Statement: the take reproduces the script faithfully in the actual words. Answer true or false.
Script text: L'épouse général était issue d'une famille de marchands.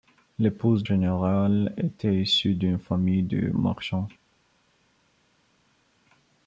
true